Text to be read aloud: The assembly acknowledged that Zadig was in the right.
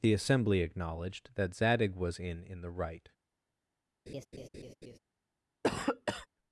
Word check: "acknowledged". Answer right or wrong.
right